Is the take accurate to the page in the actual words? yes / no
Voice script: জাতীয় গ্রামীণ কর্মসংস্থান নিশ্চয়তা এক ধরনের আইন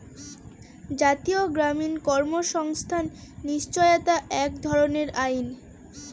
yes